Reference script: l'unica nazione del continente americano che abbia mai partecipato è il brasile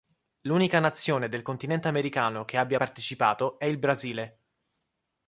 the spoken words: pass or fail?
fail